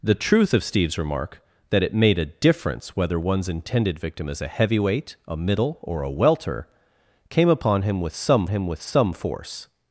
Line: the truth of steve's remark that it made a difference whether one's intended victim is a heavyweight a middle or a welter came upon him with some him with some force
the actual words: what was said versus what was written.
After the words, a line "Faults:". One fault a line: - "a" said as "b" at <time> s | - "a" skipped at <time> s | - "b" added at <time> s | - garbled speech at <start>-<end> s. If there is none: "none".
the truth of steve's remark that it made a difference whether one's intended victim is a heavyweight a middle or a welter came upon him with some him with some force
Faults:
none